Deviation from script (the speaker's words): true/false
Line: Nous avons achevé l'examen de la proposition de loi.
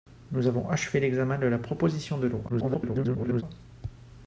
true